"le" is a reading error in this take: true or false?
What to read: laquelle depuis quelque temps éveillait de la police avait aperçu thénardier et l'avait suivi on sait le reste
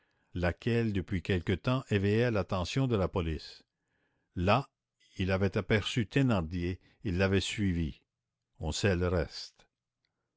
false